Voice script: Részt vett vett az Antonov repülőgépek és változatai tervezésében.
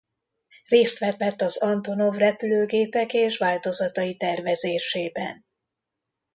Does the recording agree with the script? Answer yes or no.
yes